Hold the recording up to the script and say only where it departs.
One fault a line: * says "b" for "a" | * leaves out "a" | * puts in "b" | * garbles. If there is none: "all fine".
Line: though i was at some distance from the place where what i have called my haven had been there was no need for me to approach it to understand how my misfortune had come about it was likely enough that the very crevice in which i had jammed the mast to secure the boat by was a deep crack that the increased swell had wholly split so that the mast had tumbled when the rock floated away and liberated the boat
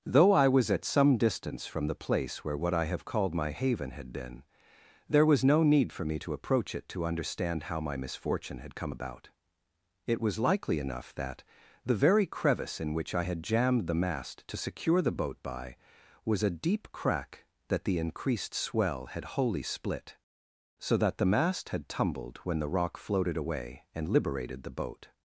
all fine